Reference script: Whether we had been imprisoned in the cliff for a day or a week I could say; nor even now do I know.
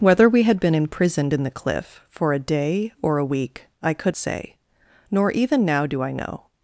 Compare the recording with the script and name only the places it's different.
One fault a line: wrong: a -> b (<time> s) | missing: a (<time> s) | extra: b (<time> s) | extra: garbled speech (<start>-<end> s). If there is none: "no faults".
no faults